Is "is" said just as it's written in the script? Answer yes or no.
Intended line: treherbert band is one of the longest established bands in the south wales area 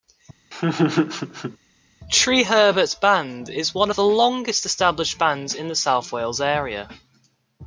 yes